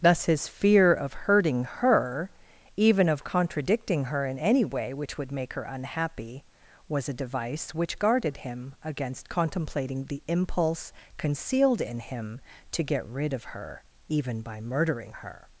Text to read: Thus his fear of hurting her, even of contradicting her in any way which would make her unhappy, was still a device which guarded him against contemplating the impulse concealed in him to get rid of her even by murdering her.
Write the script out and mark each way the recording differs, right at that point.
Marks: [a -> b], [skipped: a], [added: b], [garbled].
Thus his fear of hurting her, even of contradicting her in any way which would make her unhappy, was [skipped: still] a device which guarded him against contemplating the impulse concealed in him to get rid of her even by murdering her.